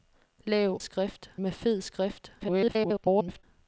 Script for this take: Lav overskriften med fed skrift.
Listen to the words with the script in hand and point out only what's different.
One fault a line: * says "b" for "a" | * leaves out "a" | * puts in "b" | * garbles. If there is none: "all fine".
* says "skrift" for "overskriften"
* garbles